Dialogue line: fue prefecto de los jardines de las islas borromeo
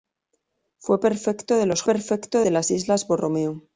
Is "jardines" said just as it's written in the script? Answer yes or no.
no